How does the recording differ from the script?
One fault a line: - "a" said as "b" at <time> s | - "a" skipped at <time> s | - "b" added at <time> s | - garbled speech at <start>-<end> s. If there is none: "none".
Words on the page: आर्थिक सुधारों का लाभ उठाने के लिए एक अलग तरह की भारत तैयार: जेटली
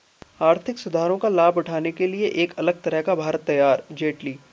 - "की" said as "का" at 3.0 s